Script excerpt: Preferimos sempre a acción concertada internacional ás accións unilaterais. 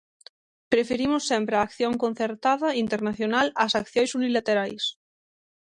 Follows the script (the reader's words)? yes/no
yes